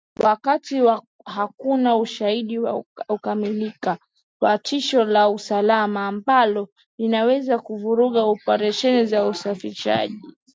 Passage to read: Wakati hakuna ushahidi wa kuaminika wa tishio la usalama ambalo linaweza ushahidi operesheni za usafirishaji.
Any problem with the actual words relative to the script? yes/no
yes